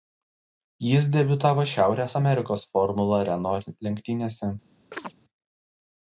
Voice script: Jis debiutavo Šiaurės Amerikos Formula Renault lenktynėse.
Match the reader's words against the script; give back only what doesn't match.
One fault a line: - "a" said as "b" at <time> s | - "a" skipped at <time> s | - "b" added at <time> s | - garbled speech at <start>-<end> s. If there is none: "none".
none